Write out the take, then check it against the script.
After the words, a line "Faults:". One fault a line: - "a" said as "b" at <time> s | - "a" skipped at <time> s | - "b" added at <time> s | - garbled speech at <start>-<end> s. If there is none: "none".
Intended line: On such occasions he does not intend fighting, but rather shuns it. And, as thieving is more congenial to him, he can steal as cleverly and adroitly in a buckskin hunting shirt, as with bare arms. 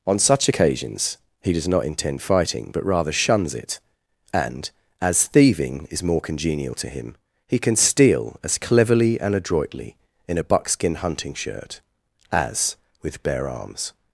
On such occasions he does not intend fighting, but rather shuns it. And, as thieving is more congenial to him, he can steal as cleverly and adroitly in a buckskin hunting shirt, as with bare arms.
Faults:
none